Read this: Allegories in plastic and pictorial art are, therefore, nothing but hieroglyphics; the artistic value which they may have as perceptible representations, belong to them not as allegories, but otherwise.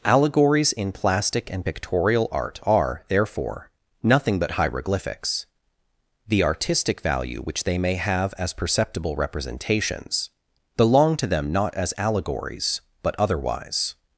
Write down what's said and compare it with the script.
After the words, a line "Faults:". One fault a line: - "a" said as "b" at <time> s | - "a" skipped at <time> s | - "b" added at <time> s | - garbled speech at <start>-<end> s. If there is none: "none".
Allegories in plastic and pictorial art are, therefore, nothing but hieroglyphics; the artistic value which they may have as perceptible representations, belong to them not as allegories, but otherwise.
Faults:
none